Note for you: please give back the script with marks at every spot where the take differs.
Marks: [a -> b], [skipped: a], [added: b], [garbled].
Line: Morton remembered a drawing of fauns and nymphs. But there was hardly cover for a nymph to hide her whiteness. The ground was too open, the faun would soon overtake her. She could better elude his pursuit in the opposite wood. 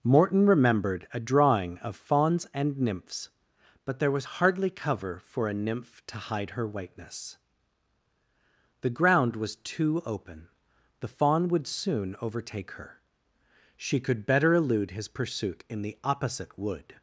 Morton remembered a drawing of fauns and nymphs. But there was hardly cover for a nymph to hide her whiteness. The ground was too open, the faun would soon overtake her. She could better elude his pursuit in the opposite wood.